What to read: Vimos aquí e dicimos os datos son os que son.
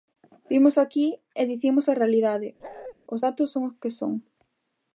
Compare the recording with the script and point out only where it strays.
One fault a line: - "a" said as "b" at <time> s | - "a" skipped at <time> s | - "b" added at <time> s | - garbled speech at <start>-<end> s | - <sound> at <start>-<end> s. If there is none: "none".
- "a realidade" added at 1.9 s
- bark at 2.6-2.9 s